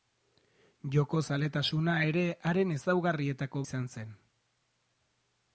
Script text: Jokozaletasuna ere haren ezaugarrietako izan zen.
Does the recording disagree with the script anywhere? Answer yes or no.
no